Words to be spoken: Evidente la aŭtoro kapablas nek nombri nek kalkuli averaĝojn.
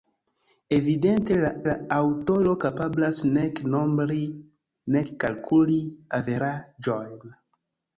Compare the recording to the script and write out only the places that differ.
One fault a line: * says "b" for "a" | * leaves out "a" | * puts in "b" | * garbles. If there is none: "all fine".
* puts in "la"